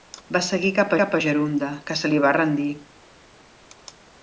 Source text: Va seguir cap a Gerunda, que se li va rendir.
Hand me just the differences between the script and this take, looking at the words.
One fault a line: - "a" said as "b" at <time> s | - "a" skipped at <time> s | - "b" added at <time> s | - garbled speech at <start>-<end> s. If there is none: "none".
- "cap" added at 1.0 s